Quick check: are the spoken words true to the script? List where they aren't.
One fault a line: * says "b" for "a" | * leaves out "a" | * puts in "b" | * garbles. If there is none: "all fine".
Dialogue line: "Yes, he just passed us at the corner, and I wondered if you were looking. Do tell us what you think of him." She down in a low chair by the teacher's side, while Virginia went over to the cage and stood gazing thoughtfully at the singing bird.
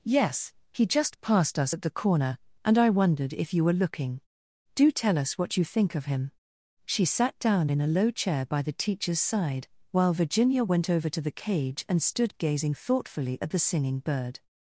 * puts in "sat"